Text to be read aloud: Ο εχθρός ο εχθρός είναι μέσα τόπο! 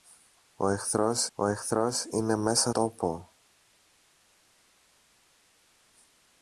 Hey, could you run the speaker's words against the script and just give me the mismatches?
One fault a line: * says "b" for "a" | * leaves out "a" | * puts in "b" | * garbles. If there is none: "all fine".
all fine